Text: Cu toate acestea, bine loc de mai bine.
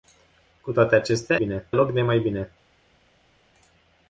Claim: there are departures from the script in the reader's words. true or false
false